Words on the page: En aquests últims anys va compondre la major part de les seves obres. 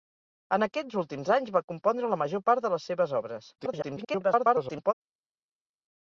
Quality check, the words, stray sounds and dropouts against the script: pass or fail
fail